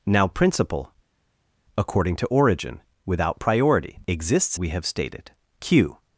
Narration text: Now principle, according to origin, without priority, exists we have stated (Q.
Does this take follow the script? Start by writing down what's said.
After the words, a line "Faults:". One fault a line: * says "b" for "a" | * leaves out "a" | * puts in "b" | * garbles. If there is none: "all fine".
Now principle, according to origin, without priority, exists we have stated (Q.
Faults:
all fine